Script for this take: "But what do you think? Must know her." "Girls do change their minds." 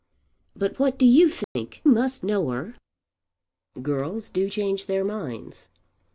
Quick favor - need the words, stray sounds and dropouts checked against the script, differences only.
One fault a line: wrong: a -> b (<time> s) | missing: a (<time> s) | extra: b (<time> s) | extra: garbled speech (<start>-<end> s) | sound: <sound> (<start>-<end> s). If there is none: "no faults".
sound: dropout (1.4-1.6 s)